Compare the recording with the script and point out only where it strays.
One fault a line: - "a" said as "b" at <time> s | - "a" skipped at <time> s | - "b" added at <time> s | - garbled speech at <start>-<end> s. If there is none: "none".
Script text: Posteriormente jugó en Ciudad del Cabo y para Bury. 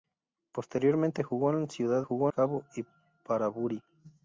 - "del" said as "jugó" at 2.0 s